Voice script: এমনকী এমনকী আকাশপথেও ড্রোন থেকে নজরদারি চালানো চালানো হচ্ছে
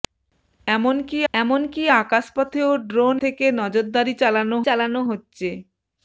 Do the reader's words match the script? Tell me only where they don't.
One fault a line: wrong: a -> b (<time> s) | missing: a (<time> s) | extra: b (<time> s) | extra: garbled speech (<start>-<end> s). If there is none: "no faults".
no faults